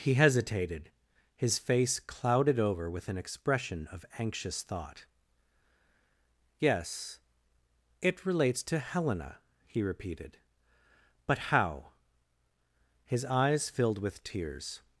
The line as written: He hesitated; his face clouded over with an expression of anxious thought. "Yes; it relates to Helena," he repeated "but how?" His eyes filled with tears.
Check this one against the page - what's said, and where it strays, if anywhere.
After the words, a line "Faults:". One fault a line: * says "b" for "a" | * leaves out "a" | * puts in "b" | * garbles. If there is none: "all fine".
He hesitated; his face clouded over with an expression of anxious thought. "Yes; it relates to Helena," he repeated "but how?" His eyes filled with tears.
Faults:
all fine